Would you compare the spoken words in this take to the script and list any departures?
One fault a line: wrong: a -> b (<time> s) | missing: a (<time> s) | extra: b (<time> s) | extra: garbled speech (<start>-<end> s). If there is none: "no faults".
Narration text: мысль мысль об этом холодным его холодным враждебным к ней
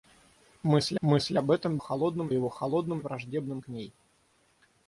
no faults